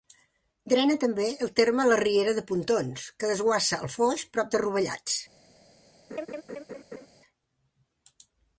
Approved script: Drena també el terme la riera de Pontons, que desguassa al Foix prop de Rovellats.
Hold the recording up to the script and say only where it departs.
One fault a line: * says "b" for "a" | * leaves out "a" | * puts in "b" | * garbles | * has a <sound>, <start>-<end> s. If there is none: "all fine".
* has a laugh, 6.1-7.1 s